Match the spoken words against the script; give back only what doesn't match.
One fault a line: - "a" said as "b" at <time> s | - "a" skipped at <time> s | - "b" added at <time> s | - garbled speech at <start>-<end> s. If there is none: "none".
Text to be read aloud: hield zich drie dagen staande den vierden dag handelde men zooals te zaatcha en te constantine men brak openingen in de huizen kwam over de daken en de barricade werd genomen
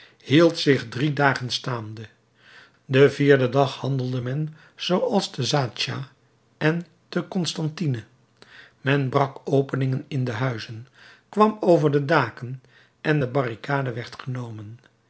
none